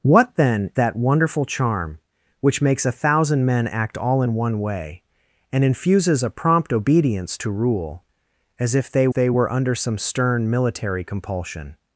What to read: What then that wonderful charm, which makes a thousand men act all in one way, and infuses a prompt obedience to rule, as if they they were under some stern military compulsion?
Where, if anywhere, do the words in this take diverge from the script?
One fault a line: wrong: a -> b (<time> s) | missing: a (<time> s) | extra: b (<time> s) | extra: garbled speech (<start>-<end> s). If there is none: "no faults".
no faults